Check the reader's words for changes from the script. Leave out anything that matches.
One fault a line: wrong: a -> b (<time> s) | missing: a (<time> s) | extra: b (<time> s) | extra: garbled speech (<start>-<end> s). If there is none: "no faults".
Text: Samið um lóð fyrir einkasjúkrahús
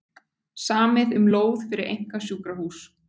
no faults